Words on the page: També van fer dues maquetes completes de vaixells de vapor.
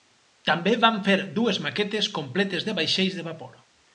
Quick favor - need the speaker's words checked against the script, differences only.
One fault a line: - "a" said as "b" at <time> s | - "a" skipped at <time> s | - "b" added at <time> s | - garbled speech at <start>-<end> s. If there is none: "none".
none